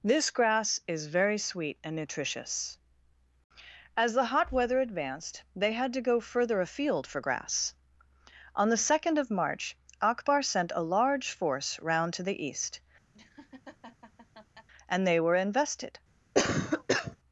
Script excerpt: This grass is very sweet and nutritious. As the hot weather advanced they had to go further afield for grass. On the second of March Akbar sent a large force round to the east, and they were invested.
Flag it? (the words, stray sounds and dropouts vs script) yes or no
yes